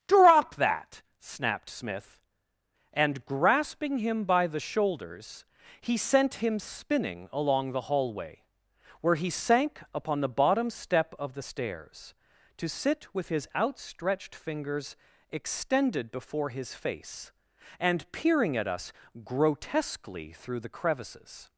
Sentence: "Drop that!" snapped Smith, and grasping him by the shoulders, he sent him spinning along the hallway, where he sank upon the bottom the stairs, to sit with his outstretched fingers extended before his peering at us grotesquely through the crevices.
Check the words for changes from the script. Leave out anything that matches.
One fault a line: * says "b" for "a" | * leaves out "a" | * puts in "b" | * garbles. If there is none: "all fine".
* puts in "step of"
* puts in "face and"